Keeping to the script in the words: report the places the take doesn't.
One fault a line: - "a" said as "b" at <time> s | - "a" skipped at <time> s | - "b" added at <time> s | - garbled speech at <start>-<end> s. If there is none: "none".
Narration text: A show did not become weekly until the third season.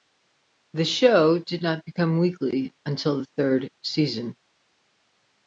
- "A" said as "The" at 0.7 s